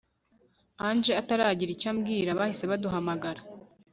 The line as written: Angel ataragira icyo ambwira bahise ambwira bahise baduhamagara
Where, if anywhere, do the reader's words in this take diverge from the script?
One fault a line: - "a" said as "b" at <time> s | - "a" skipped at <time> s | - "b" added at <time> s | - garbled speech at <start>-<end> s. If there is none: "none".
- "ambwira bahise" skipped at 2.6 s